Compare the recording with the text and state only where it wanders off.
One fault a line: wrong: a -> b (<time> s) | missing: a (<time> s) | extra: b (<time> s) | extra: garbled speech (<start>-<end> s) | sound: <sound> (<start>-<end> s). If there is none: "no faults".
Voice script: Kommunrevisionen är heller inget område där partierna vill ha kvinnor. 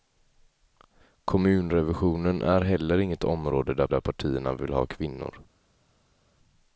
extra: där (3.9 s)